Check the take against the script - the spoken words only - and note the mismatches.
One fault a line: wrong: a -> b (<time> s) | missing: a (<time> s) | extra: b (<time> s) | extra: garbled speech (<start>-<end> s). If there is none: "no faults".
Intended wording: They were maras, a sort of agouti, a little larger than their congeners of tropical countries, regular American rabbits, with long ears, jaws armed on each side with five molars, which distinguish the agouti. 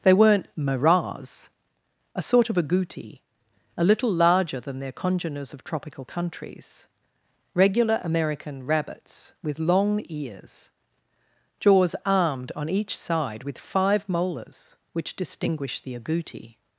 wrong: were -> weren't (0.1 s)